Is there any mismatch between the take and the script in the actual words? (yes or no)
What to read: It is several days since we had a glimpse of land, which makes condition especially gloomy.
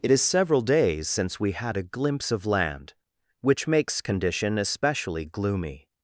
no